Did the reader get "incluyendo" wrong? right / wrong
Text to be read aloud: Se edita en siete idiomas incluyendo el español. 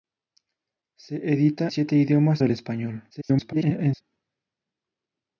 wrong